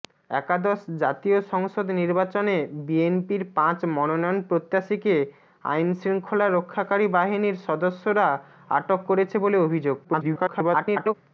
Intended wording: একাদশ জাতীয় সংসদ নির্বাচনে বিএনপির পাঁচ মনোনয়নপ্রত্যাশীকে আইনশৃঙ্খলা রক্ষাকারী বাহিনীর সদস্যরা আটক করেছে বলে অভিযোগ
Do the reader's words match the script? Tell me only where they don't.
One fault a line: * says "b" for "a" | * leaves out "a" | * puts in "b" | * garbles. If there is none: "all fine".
* garbles